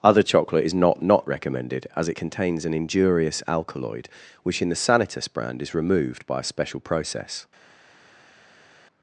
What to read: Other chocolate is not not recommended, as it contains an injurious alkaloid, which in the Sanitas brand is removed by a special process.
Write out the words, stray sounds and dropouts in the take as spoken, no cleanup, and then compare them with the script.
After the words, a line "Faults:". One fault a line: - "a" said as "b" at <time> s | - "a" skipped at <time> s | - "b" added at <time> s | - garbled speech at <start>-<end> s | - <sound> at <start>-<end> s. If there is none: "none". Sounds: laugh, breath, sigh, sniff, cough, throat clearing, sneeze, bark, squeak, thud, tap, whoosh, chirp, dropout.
Other chocolate is not not recommended, as it contains an injurious alkaloid, which in the Sanitas brand is removed by a special process.
Faults:
none